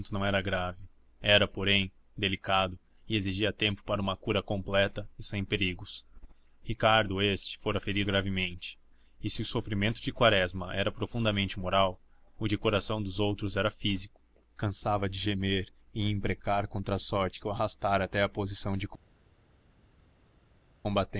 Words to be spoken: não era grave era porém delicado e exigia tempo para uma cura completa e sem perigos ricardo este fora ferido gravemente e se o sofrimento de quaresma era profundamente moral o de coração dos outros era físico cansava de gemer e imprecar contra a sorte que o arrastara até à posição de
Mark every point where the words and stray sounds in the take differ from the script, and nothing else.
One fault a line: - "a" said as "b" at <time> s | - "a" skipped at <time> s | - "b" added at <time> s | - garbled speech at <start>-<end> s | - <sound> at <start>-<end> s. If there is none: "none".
none